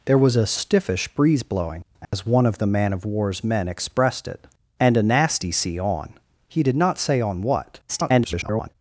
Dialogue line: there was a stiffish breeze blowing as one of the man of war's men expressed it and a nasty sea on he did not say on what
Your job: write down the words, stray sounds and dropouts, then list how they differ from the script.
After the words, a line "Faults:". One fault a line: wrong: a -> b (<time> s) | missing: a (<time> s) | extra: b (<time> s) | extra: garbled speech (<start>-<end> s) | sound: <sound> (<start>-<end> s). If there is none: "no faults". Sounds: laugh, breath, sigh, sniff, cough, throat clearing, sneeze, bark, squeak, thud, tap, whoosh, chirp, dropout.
there was a stiffish breeze blowing as one of the man of war's men expressed it and a nasty sea on he did not say on what [garbled]
Faults:
sound: dropout (2.0-2.1 s)
extra: garbled speech (7.9-8.7 s)